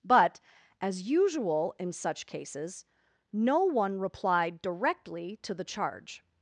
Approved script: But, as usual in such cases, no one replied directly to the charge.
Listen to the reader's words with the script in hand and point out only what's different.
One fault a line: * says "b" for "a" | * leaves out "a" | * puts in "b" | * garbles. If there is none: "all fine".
all fine